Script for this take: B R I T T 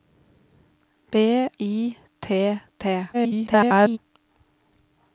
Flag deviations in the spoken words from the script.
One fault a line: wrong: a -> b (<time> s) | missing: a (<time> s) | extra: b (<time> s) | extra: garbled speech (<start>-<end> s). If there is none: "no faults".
missing: R (1.5 s)
extra: garbled speech (3.1-4.0 s)